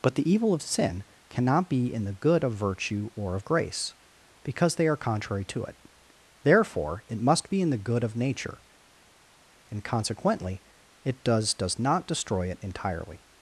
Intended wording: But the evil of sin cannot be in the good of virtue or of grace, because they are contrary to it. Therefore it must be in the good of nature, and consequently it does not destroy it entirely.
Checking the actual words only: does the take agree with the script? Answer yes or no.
no